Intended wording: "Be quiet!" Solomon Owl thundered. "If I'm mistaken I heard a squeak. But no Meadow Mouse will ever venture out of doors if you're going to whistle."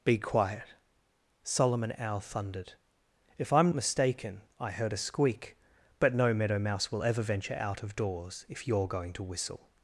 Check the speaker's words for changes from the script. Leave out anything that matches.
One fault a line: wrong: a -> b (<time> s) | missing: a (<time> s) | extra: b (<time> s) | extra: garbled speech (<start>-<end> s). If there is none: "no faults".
no faults